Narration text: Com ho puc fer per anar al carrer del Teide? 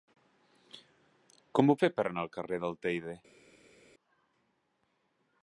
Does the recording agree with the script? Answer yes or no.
no